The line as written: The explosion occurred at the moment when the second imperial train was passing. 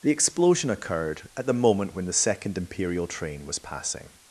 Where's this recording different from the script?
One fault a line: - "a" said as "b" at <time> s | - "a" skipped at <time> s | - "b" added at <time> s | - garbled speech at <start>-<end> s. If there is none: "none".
none